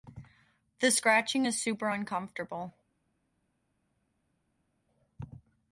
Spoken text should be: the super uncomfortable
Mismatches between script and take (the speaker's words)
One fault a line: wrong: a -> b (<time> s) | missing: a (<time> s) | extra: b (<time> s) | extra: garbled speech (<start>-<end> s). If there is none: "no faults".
extra: scratching is (0.9 s)